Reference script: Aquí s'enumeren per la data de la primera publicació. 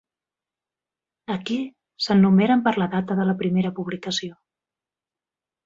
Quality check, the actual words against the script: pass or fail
pass